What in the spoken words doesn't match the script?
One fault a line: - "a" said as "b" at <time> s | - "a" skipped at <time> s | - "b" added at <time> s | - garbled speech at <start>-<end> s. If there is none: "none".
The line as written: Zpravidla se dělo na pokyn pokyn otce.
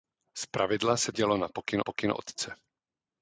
none